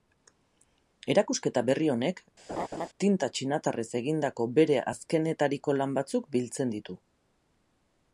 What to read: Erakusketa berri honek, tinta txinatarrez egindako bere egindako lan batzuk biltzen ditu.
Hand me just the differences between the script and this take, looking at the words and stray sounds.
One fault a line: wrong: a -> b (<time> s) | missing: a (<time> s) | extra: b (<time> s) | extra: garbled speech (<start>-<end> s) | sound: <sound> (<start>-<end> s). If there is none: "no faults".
sound: laugh (2.5-2.9 s)
wrong: egindako -> azkenetariko (4.9 s)